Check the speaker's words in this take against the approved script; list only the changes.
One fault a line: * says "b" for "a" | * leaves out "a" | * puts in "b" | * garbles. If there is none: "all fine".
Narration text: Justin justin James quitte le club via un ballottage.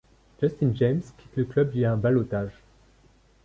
* leaves out "justin"